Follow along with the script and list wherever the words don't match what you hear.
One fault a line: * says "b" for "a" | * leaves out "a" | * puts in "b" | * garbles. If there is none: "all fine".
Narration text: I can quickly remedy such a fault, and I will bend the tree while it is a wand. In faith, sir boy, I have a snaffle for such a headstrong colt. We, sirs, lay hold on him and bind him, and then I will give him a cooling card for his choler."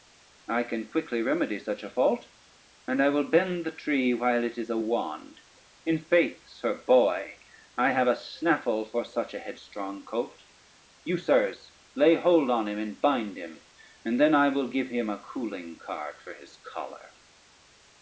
* says "You" for "We"